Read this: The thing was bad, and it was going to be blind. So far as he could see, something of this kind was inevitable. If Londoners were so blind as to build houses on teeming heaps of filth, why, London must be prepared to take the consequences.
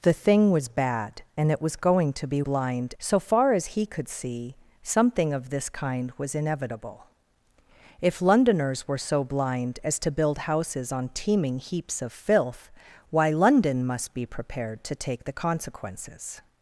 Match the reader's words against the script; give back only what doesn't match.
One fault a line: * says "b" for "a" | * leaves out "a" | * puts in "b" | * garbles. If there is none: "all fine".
all fine